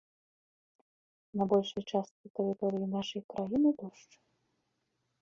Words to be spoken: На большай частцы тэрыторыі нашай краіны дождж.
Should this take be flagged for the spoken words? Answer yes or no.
no